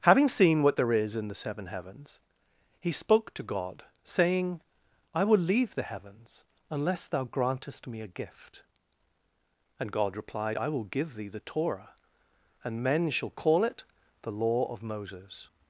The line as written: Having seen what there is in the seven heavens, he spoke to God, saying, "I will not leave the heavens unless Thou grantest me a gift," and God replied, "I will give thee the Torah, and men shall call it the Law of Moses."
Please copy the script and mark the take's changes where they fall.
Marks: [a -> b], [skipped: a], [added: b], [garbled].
Having seen what there is in the seven heavens, he spoke to God, saying, "I will [skipped: not] leave the heavens unless Thou grantest me a gift," and God replied, "I will give thee the Torah, and men shall call it the Law of Moses."